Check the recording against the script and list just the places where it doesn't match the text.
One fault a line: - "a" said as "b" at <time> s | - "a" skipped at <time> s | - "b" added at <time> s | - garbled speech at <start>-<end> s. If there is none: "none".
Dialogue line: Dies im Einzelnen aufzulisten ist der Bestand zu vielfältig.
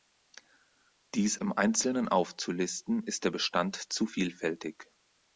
none